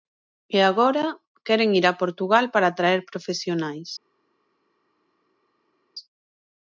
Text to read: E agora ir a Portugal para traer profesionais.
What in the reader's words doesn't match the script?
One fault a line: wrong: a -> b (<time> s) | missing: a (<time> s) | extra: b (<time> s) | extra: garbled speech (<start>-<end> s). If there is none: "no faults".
extra: queren (1.5 s)